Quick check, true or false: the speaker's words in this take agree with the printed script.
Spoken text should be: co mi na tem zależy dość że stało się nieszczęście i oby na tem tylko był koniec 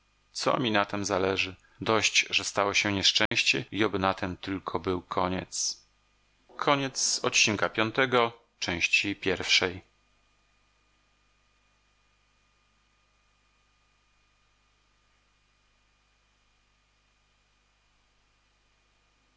true